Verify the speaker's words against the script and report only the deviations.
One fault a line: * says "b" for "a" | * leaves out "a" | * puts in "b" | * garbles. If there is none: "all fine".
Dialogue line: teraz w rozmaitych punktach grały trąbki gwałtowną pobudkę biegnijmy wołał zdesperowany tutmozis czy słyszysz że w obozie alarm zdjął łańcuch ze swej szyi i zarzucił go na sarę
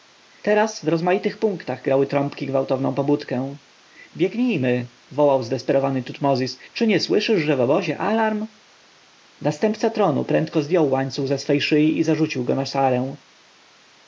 * puts in "nie"
* puts in "następca tronu prędko"